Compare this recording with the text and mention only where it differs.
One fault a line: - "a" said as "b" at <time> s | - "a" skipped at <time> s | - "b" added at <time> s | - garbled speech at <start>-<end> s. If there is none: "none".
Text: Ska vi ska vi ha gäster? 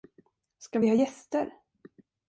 - "ska vi" skipped at 0.9 s